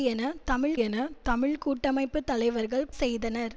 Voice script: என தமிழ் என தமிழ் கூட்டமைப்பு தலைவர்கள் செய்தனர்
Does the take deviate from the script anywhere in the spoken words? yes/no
no